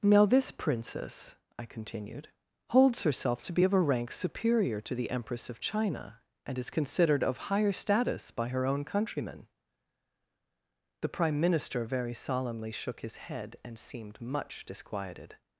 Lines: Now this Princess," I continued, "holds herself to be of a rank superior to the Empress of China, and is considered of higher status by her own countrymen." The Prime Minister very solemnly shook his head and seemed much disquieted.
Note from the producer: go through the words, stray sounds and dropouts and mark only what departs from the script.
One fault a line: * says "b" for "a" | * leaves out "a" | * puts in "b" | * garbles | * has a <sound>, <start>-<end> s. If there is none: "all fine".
all fine